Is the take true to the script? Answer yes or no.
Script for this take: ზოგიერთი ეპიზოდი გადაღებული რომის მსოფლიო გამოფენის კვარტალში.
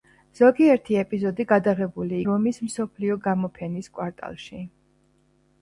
yes